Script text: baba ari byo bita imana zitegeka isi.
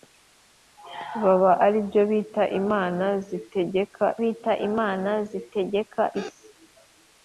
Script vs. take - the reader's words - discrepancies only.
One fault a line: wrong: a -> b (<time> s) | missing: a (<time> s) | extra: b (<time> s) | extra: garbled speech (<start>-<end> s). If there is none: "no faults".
extra: bita imana zitegeka (4.2 s)